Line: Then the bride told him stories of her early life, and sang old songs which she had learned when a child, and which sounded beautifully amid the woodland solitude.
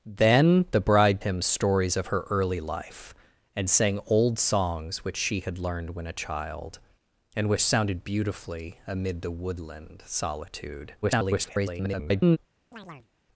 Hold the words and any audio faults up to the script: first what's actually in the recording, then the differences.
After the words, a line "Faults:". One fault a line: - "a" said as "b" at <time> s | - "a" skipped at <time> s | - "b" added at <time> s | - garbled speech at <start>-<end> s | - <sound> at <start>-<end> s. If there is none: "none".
Then the bride him stories of her early life, and sang old songs which she had learned when a child, and which sounded beautifully amid the woodland solitude. [garbled]
Faults:
- "told" skipped at 1.2 s
- garbled speech at 11.0-12.4 s
- chirp at 12.7-13.1 s